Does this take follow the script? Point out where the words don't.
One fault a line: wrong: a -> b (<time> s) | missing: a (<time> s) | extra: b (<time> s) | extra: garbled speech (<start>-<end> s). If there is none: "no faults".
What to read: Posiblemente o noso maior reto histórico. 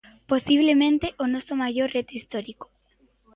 no faults